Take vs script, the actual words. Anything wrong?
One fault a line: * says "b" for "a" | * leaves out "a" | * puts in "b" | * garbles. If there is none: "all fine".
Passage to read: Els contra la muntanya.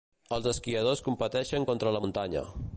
* puts in "esquiadors competeixen"